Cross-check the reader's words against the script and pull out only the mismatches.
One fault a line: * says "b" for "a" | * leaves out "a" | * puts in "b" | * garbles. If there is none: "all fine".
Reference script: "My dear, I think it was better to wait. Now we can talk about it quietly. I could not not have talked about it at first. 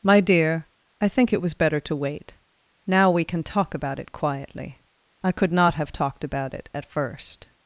* leaves out "not"